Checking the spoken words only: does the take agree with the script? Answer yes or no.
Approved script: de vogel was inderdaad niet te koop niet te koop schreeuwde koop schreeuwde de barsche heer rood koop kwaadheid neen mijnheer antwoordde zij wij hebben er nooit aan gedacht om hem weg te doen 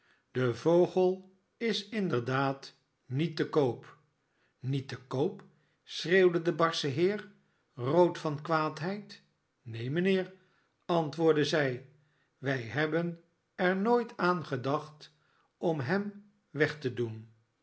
no